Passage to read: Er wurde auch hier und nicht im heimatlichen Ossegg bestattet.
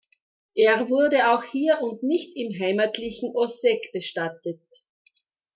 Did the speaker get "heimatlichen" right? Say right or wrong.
right